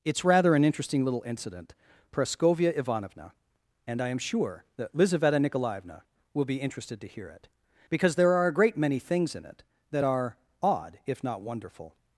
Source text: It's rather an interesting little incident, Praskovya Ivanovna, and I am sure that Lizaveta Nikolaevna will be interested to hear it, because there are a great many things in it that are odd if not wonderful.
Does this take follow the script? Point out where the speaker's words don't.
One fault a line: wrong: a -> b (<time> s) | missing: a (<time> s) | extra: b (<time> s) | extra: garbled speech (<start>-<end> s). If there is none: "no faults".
no faults